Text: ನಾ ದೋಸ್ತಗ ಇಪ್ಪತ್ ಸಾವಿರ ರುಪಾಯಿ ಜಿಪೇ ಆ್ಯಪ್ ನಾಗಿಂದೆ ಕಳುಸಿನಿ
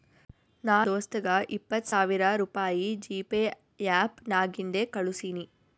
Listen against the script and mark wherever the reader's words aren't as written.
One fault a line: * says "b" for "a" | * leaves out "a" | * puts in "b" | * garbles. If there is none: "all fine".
all fine